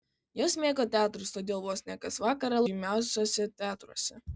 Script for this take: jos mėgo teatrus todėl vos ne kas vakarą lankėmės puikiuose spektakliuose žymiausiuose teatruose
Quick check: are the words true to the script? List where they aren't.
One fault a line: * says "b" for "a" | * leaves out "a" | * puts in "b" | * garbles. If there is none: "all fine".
* leaves out "lankėmės puikiuose spektakliuose"